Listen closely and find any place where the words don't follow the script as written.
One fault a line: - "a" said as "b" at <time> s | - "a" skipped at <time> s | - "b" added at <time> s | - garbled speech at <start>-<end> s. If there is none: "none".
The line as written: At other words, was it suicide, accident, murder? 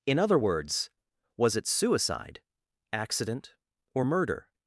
- "At" said as "In" at 0.1 s
- "or" added at 3.9 s